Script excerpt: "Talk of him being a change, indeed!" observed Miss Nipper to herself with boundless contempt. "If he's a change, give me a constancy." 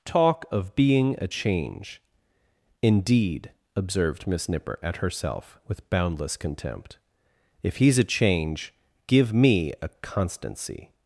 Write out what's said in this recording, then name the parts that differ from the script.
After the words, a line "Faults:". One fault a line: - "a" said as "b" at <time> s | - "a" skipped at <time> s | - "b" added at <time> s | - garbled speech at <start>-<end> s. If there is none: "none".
"Talk of being a change, indeed!" observed Miss Nipper at herself with boundless contempt. "If he's a change, give me a constancy."
Faults:
- "him" skipped at 0.8 s
- "to" said as "at" at 4.8 s